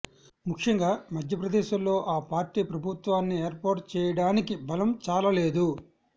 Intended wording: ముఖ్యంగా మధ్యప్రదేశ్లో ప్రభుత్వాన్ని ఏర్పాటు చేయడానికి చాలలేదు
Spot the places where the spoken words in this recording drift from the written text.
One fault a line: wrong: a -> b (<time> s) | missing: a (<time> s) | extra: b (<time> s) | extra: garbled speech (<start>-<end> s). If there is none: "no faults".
extra: ఆ పార్టీ (2.1 s)
extra: బలం (4.6 s)